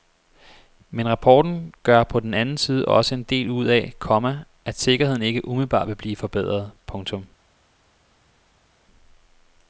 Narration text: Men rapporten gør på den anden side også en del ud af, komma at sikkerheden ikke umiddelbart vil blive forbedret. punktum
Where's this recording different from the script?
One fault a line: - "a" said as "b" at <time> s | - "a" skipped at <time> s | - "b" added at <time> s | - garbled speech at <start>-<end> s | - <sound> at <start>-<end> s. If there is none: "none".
none